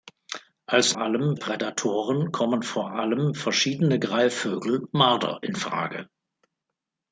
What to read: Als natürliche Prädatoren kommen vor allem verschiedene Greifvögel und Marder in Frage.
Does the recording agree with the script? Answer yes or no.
no